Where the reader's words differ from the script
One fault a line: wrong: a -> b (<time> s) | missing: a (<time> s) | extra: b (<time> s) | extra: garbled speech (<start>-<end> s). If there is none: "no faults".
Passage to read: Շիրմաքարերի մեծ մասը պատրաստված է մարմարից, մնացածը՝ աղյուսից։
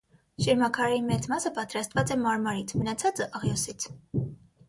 no faults